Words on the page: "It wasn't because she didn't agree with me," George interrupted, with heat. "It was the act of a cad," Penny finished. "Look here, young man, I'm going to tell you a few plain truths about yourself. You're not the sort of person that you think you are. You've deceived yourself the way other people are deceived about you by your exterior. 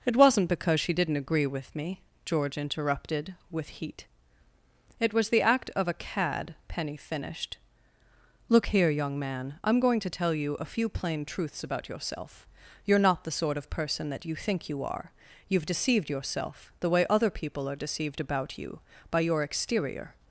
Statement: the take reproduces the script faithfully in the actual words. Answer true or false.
true